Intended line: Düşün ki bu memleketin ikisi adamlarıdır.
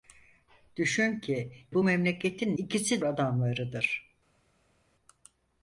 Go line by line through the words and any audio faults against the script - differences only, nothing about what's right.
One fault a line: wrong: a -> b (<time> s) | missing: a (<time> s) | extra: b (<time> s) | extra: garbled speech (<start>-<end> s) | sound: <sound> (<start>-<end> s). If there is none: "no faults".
no faults